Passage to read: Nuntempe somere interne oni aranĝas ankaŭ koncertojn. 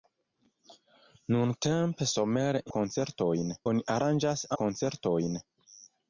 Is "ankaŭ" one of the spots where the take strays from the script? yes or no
yes